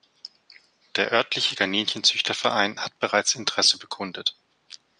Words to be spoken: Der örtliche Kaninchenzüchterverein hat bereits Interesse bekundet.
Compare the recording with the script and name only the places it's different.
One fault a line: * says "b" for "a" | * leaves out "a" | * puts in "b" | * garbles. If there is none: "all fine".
all fine